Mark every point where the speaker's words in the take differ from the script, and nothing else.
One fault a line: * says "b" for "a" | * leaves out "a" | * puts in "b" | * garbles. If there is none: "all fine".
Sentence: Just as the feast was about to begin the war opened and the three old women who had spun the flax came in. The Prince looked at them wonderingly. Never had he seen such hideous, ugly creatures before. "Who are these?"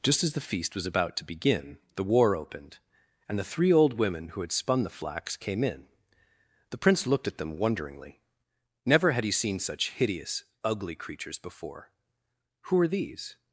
all fine